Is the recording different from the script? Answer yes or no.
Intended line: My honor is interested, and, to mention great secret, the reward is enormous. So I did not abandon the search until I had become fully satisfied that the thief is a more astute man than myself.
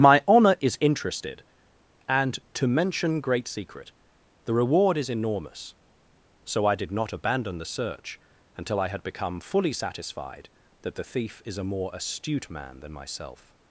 no